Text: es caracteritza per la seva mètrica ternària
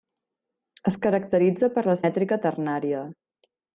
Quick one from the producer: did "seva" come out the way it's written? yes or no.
no